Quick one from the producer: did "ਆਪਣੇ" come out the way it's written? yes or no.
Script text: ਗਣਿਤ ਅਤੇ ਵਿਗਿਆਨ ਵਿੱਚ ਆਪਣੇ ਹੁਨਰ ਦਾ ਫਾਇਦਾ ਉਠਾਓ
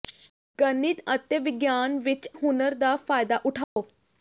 no